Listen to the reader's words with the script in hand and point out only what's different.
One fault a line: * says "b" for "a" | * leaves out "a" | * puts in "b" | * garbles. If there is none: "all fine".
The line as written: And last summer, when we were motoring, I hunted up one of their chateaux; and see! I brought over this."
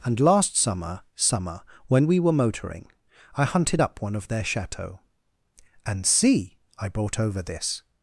* puts in "summer"